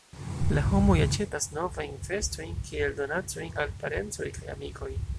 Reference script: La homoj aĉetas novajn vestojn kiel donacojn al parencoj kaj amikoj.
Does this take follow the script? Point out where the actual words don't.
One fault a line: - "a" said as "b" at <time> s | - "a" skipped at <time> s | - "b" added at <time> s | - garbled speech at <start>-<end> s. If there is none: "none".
none